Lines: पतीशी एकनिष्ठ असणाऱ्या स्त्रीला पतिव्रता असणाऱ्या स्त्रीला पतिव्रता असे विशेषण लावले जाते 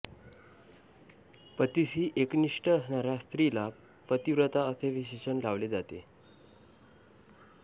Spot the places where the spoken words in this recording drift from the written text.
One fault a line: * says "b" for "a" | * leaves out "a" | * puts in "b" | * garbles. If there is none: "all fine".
* leaves out "असणाऱ्या स्त्रीला पतिव्रता"